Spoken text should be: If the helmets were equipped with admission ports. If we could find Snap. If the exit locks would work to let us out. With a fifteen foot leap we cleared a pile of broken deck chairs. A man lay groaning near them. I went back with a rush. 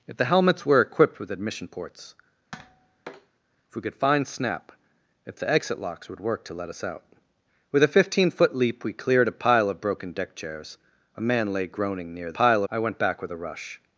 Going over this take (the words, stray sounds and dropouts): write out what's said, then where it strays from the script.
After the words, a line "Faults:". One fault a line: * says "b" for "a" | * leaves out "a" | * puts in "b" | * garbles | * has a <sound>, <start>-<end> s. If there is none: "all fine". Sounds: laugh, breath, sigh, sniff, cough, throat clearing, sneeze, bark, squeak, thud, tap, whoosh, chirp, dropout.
If the helmets were equipped with admission ports. If we could find Snap. If the exit locks would work to let us out. With a fifteen foot leap we cleared a pile of broken deck chairs. A man lay groaning near pile. I went back with a rush.
Faults:
* has a tap, 2.5-3.3 s
* says "pile" for "them"